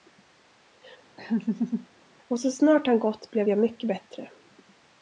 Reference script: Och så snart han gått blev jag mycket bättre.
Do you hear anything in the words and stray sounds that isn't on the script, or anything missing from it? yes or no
yes